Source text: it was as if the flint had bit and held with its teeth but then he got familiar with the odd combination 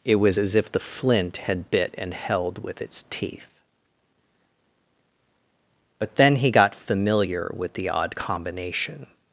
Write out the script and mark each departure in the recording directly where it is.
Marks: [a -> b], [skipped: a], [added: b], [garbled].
it was as if the flint had bit and held with its teeth but then he got familiar with the odd combination